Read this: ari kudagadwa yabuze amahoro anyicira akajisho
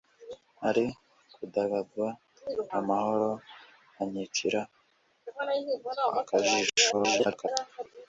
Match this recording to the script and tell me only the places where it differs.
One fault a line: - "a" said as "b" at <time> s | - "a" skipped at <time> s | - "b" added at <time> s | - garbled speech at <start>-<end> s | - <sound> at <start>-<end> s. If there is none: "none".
- "yabuze" skipped at 2.1 s
- garbled speech at 6.9-7.5 s